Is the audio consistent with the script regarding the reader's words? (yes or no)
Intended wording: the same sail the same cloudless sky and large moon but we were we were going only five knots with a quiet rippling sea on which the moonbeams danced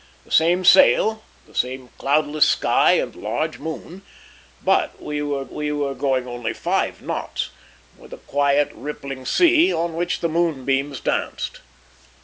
yes